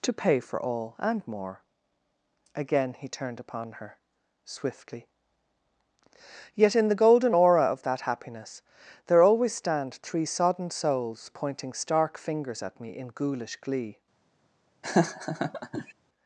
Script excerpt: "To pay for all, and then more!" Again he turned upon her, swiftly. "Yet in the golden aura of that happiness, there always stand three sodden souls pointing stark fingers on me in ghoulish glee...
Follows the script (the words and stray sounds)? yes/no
no